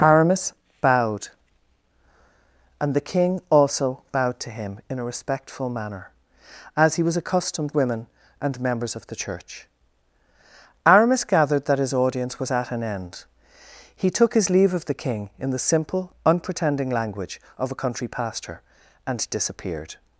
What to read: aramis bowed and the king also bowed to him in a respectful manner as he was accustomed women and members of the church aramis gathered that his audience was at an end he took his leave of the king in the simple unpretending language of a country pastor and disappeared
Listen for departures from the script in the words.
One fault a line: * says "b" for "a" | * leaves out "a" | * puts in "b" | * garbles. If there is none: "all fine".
all fine